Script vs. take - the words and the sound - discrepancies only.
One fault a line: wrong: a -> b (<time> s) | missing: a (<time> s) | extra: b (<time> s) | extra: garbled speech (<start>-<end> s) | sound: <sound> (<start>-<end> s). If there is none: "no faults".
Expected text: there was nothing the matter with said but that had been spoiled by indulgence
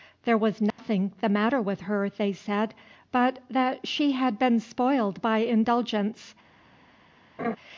sound: dropout (0.7-0.8 s)
extra: her they (1.8 s)
extra: she (3.9 s)
sound: laugh (7.4-7.6 s)